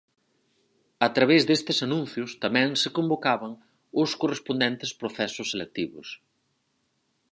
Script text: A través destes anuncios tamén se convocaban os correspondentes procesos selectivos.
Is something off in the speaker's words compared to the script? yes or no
no